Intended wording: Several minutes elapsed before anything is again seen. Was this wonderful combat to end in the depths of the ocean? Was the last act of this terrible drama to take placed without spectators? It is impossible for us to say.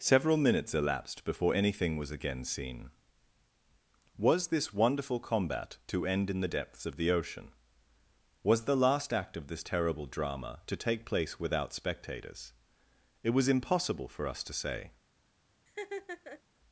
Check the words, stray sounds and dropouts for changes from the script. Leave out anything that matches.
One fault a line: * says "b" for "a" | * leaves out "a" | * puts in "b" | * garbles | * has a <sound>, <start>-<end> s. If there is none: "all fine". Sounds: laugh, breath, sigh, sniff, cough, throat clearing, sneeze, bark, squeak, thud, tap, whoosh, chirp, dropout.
* says "was" for "is"
* says "place" for "placed"
* says "was" for "is"
* has a laugh, 15.7-16.4 s